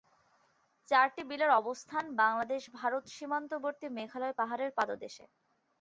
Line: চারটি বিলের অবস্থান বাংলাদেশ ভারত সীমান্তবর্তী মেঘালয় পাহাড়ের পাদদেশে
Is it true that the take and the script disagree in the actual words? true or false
false